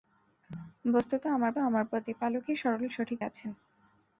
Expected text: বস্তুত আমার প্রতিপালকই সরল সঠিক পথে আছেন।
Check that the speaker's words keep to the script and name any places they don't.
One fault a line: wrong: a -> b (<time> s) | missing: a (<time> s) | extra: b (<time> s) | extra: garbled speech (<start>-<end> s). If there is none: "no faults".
extra: আমার (1.6 s)
missing: পথে (3.2 s)